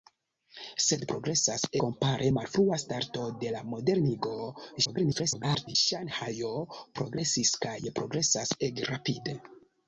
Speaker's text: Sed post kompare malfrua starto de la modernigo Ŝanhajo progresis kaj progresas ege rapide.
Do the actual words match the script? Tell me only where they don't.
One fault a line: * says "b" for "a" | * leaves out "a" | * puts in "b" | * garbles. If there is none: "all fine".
* says "progresas" for "post"
* garbles